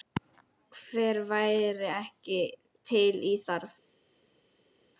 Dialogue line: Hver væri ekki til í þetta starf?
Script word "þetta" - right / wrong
wrong